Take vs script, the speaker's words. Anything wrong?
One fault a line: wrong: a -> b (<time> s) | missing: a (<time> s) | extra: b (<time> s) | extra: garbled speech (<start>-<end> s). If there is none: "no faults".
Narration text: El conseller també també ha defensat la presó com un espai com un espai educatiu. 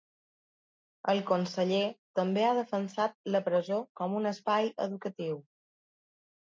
missing: també (2.5 s)
missing: com un espai (4.7 s)